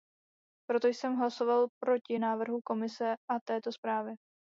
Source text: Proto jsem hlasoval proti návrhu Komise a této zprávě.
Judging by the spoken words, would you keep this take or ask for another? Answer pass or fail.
pass